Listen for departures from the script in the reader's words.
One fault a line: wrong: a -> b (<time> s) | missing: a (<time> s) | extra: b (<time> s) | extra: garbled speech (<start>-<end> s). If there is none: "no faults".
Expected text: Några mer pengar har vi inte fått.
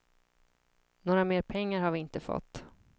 no faults